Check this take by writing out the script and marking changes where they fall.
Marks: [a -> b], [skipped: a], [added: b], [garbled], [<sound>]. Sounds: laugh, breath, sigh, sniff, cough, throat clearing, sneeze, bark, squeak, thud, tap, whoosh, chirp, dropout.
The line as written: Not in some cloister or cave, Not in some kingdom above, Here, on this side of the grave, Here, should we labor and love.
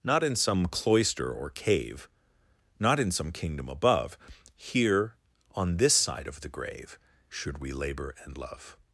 Not in some cloister or cave, Not in some kingdom above, Here, on this side of the grave, [skipped: Here,] should we labor and love.